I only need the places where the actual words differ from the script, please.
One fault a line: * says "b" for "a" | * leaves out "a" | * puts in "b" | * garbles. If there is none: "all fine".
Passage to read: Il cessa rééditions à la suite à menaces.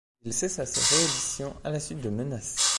* puts in "ses"
* says "de" for "à"